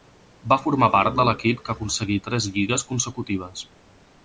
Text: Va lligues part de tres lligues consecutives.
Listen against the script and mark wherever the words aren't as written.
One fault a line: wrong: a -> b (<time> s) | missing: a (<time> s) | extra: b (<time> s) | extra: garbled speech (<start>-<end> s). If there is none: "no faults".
wrong: lligues -> formar (0.6 s)
extra: l'equip que aconseguí (1.3 s)